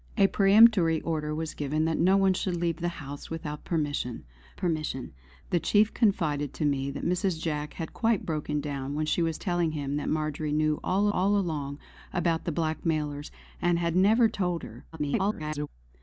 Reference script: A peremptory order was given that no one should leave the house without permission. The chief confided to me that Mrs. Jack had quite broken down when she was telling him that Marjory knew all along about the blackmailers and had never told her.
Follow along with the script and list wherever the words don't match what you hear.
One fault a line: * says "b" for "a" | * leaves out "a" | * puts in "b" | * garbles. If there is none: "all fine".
* puts in "permission"
* puts in "all"
* garbles